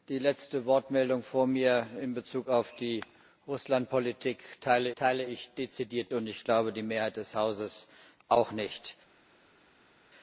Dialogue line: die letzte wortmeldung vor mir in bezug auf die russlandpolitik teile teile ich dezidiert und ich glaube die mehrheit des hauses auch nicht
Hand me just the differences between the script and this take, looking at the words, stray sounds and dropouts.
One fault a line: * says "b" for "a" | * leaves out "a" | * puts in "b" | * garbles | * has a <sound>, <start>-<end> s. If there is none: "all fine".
all fine